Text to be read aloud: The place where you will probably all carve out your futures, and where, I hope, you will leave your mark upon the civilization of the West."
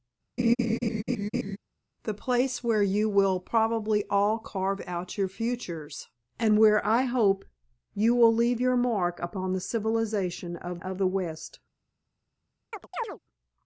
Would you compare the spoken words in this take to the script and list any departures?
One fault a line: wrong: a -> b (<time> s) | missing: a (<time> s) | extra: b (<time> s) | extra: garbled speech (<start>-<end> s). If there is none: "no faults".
extra: of (10.8 s)